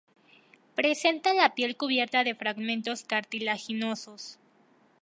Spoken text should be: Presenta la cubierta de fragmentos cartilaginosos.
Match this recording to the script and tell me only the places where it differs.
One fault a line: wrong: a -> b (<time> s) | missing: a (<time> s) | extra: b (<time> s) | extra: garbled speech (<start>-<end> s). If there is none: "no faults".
extra: piel (1.5 s)